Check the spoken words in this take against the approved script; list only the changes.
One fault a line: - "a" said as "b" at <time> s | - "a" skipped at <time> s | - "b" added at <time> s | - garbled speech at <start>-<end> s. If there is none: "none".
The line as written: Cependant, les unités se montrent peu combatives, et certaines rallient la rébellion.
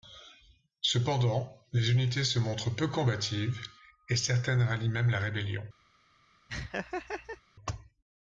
- "même" added at 4.9 s